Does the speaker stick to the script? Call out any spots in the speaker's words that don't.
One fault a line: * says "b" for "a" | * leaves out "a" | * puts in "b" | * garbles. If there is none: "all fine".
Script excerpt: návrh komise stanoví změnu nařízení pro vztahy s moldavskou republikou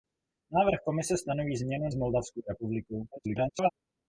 * leaves out "nařízení pro vztahy"
* garbles